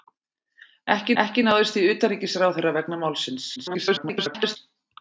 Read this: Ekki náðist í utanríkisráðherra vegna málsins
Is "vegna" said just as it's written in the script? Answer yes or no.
yes